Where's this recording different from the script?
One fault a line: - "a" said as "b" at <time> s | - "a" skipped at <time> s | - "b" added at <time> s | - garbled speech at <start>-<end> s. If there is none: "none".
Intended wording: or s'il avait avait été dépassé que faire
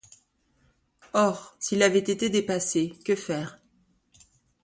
- "avait" skipped at 2.0 s